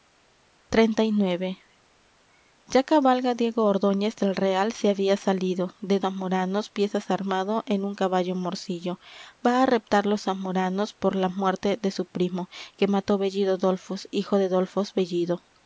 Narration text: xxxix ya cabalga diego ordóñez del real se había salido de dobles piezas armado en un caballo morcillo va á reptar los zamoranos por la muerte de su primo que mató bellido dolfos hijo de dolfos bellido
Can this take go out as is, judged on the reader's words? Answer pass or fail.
fail